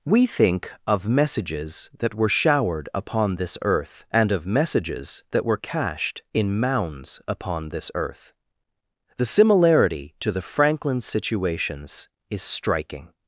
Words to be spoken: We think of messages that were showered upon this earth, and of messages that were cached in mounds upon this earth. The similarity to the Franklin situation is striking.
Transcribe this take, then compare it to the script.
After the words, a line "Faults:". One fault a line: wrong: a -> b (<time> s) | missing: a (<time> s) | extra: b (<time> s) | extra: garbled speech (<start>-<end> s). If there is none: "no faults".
We think of messages that were showered upon this earth, and of messages that were cached in mounds upon this earth. The similarity to the Franklin situations is striking.
Faults:
wrong: situation -> situations (11.0 s)